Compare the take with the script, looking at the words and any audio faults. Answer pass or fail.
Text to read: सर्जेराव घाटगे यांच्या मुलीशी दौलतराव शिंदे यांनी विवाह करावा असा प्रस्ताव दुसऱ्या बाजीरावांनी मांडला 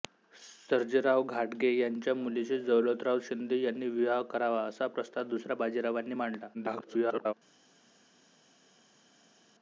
fail